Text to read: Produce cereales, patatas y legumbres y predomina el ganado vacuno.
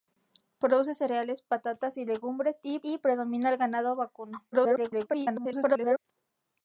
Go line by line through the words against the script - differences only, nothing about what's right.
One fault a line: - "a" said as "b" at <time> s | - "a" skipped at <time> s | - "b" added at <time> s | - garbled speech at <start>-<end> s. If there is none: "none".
- "y" added at 2.8 s
- garbled speech at 4.5-6.0 s